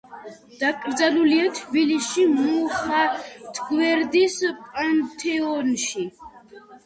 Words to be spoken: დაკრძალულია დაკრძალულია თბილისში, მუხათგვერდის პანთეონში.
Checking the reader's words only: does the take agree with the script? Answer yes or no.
no